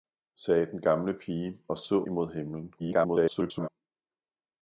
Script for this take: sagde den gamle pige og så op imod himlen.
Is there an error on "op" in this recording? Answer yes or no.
yes